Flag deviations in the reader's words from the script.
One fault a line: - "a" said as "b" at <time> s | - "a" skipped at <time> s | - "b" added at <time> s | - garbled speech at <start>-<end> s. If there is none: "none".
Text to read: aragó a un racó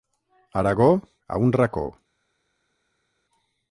none